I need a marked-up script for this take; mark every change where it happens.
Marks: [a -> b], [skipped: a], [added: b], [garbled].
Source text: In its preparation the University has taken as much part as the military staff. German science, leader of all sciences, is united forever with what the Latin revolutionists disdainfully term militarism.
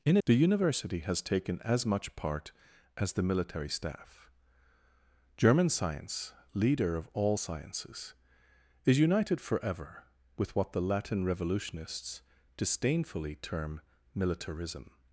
In [skipped: its preparation] the University has taken as much part as the military staff. German science, leader of all sciences, is united forever with what the Latin revolutionists disdainfully term militarism.